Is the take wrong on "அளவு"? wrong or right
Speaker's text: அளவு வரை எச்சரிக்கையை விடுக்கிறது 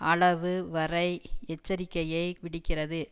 right